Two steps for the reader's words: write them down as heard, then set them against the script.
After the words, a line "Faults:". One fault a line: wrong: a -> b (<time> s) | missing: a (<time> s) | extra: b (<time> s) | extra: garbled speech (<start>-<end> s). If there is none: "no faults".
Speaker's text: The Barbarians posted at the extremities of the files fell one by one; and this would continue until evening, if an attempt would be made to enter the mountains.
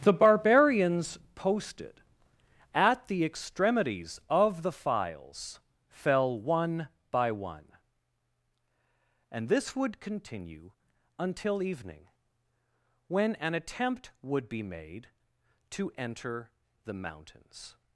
The Barbarians posted at the extremities of the files fell one by one; and this would continue until evening, when an attempt would be made to enter the mountains.
Faults:
wrong: if -> when (13.1 s)